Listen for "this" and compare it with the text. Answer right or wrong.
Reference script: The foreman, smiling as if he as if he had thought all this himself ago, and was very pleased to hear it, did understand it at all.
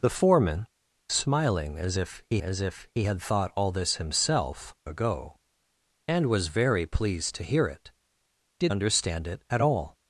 right